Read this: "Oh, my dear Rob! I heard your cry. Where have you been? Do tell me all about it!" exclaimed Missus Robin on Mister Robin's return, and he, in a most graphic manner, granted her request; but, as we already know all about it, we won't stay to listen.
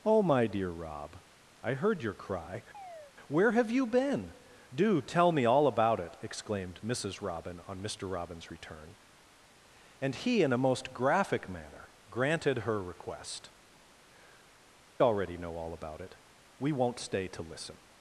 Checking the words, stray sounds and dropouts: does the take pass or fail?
fail